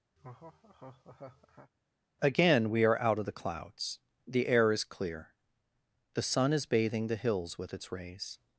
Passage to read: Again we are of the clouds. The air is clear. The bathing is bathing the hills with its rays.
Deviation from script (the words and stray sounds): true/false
true